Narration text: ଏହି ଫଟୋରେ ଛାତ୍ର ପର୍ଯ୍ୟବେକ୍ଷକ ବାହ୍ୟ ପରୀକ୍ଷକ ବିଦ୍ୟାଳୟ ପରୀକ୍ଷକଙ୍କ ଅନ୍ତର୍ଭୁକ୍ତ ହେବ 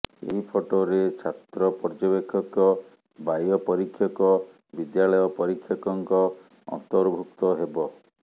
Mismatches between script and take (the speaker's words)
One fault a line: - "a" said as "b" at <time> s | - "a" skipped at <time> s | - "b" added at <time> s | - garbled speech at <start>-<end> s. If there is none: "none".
none